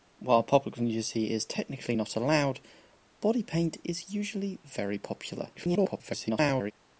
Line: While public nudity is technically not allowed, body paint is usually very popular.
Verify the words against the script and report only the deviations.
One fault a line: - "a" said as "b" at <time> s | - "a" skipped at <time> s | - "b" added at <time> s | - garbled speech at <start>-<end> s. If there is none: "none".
- garbled speech at 5.5-6.7 s